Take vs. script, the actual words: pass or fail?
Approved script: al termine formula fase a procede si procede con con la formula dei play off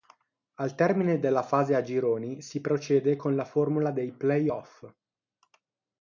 fail